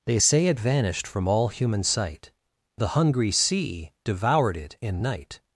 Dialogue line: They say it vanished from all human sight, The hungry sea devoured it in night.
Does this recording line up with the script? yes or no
yes